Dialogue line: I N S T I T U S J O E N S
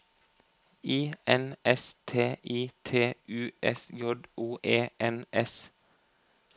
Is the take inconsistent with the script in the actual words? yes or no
no